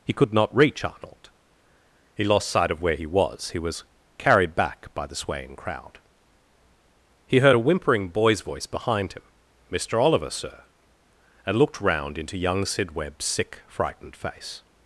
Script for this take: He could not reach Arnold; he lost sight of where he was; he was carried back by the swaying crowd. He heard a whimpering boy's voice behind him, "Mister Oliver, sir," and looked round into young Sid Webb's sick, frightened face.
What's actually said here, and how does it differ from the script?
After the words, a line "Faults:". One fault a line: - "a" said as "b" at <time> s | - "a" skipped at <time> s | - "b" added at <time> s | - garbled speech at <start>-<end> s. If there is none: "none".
He could not reach Arnold; he lost sight of where he was; he was carried back by the swaying crowd. He heard a whimpering boy's voice behind him, "Mister Oliver, sir," and looked round into young Sid Webb's sick, frightened face.
Faults:
none